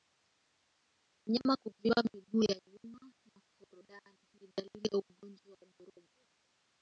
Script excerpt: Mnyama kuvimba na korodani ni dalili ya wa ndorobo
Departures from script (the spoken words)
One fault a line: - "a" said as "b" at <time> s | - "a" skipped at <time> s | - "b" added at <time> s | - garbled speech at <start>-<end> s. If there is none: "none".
- "miguu ya nyuma" added at 2.1 s
- "ugonjwa" added at 5.0 s